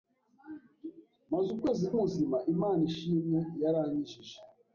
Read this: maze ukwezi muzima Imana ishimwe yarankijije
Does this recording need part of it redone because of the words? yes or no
no